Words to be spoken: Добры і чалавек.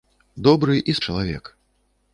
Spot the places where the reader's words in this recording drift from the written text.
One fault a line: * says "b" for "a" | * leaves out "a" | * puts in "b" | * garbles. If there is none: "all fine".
all fine